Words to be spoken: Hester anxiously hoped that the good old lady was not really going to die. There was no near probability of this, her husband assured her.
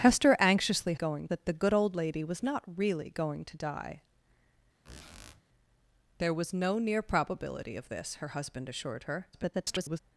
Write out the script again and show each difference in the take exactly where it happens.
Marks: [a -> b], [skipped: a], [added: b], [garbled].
Hester anxiously [hoped -> going] that the good old lady was not really going to die. There was no near probability of this, her husband assured her. [garbled]